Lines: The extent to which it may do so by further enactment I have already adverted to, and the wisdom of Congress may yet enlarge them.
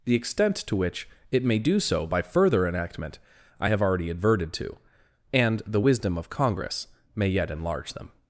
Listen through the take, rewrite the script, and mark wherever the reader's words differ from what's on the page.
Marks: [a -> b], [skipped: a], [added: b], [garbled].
The extent to which it may do so by further enactment I have already adverted to, and the wisdom of Congress may yet enlarge them.